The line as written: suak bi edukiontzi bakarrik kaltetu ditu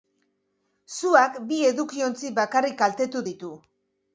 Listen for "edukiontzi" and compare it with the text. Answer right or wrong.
right